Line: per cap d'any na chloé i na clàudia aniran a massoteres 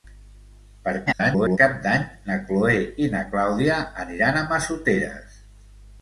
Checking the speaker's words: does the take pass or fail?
fail